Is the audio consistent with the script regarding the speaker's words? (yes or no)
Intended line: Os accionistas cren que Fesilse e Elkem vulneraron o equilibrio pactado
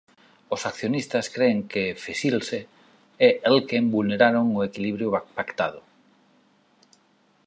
yes